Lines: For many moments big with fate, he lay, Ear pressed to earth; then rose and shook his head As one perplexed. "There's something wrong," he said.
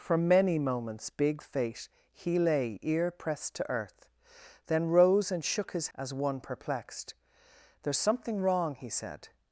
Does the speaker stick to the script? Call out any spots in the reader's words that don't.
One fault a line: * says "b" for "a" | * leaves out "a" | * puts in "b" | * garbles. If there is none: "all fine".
* leaves out "with"
* leaves out "head"